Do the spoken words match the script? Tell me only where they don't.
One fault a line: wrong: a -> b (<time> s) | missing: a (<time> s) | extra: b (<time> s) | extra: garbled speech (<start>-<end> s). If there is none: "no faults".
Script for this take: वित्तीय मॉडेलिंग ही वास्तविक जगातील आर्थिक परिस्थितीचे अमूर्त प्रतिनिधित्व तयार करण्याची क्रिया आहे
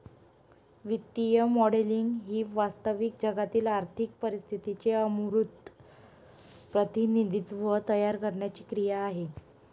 no faults